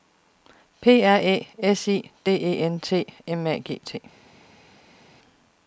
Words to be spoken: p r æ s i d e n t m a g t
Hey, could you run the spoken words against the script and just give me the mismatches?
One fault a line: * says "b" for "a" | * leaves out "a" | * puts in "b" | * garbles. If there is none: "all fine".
all fine